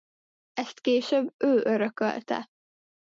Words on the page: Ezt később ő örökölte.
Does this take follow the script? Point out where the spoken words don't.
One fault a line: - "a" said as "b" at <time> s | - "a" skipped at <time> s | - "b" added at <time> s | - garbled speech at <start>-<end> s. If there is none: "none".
none